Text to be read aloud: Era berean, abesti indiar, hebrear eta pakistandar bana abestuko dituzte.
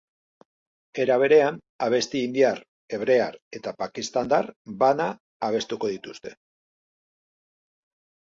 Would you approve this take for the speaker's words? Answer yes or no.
yes